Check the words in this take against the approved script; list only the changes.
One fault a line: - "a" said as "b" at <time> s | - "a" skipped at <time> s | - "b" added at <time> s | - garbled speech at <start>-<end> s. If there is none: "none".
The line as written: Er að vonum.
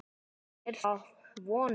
none